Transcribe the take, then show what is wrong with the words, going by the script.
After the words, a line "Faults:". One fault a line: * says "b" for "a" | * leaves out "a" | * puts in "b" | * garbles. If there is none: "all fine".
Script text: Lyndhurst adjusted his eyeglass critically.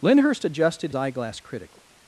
Lyndhurst adjusted eyeglass critically.
Faults:
* leaves out "his"